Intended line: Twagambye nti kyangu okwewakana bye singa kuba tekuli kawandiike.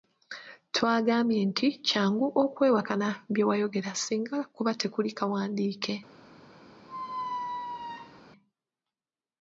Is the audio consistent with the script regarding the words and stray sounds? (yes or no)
no